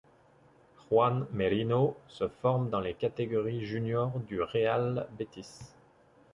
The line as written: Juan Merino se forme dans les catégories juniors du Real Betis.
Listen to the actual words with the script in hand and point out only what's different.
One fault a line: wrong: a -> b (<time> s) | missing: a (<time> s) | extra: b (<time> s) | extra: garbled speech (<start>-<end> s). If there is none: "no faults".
no faults